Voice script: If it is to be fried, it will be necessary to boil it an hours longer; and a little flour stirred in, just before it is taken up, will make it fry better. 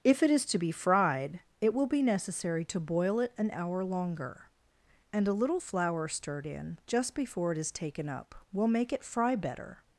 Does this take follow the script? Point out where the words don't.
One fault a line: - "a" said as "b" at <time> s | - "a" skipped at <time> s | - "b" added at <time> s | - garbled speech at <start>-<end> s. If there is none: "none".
- "hours" said as "hour" at 3.5 s